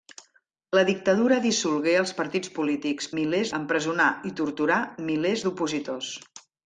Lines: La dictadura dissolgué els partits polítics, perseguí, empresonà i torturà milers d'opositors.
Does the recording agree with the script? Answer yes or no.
no